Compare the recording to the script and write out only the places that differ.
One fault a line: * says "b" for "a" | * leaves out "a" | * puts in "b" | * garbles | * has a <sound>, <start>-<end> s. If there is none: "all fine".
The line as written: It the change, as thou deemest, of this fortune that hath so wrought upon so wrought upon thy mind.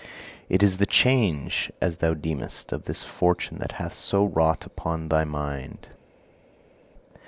* puts in "is"
* leaves out "so wrought upon"